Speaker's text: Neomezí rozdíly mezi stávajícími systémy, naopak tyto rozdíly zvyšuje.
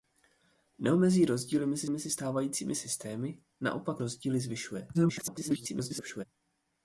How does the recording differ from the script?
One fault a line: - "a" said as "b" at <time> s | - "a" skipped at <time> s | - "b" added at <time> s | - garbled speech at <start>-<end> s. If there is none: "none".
- "mezi" added at 1.9 s
- "tyto" skipped at 4.0 s
- garbled speech at 4.9-6.2 s